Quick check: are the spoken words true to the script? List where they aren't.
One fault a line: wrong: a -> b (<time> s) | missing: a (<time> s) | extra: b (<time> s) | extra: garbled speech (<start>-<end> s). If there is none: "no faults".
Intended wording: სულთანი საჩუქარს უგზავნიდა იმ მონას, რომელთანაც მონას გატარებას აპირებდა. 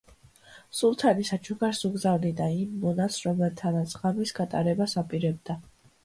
wrong: მონას -> ღამის (4.0 s)